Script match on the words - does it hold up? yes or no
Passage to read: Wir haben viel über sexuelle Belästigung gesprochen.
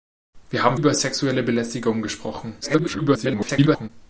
no